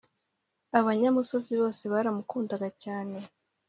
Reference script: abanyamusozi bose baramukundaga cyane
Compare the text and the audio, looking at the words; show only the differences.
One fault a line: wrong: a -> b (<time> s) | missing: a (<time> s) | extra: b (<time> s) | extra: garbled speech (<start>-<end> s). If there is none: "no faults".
no faults